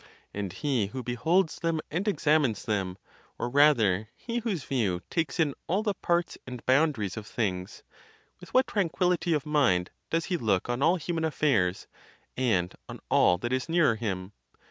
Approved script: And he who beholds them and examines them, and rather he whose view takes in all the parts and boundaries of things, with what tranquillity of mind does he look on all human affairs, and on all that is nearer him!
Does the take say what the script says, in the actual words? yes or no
no